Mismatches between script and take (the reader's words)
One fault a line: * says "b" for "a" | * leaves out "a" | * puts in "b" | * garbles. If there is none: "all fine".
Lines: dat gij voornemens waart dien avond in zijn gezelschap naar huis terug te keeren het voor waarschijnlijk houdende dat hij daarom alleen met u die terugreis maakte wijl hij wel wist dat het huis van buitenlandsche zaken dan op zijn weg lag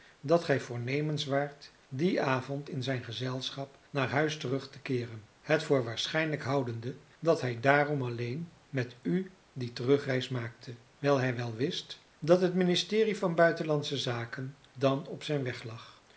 * says "ministerie" for "huis"